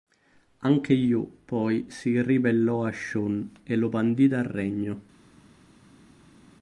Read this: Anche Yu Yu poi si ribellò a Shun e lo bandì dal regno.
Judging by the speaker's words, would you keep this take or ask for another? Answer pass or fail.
fail